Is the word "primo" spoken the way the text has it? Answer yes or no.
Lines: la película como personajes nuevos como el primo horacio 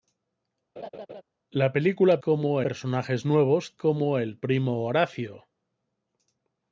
yes